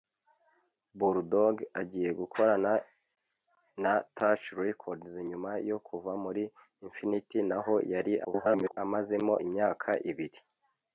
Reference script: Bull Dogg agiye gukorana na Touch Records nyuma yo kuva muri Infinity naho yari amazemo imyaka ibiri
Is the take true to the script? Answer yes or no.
no